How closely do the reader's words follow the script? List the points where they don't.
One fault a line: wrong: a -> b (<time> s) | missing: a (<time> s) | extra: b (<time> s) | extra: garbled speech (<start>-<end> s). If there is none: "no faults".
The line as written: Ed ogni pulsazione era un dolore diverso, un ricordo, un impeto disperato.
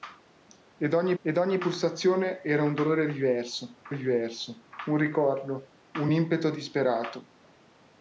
extra: ed ogni (1.2 s)
extra: diverso (3.9 s)